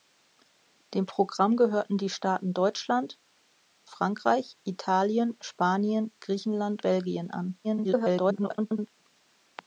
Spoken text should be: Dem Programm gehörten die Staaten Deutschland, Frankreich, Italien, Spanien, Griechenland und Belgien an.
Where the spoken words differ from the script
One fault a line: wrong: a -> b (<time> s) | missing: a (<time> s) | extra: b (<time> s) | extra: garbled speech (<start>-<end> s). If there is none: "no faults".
missing: und (6.8 s)
extra: garbled speech (7.6-8.9 s)